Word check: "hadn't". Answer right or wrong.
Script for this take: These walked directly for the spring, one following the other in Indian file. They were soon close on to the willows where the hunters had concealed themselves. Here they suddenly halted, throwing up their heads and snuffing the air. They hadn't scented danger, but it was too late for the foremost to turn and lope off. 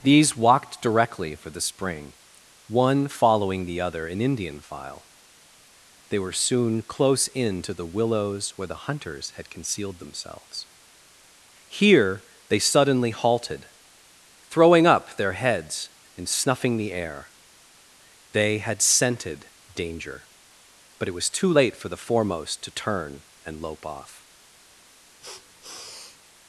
wrong